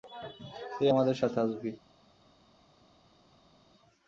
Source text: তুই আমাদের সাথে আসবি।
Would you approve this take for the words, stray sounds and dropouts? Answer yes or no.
yes